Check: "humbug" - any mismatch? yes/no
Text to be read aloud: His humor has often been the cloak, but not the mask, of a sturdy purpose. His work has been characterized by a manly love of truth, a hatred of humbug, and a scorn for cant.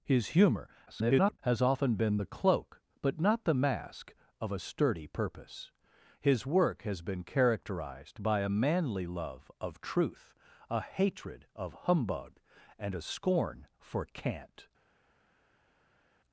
no